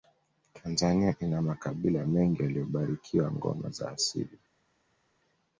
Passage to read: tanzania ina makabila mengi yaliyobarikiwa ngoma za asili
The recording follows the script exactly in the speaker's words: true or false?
true